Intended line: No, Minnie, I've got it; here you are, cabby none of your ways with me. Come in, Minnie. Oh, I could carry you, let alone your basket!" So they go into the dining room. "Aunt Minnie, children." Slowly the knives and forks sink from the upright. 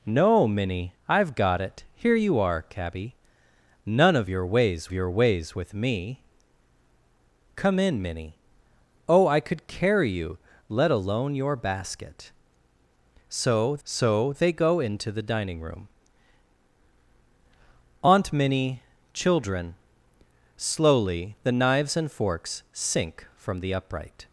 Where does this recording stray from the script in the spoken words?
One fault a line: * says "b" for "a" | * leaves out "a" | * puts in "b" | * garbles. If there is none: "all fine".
* puts in "your ways"
* puts in "so"